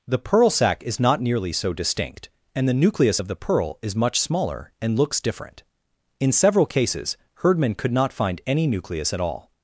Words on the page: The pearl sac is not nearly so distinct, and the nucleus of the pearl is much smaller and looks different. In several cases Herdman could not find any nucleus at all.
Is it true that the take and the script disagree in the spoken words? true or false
false